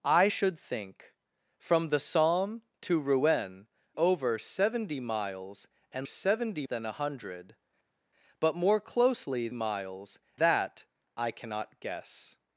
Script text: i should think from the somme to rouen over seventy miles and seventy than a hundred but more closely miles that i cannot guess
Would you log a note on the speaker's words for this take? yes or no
no